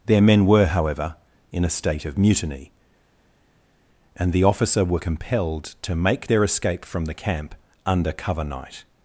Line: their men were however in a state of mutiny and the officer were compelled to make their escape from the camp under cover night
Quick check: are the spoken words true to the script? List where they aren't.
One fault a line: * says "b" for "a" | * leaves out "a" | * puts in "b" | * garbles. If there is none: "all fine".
all fine